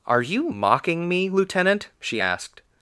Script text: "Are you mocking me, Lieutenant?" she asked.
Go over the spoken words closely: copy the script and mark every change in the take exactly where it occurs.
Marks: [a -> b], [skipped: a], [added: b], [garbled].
"Are you mocking me, Lieutenant?" she asked.